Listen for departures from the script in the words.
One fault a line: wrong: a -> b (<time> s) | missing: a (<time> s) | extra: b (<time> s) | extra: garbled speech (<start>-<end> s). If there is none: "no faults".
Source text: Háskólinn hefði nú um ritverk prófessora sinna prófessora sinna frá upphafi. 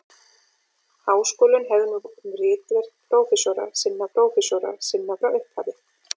no faults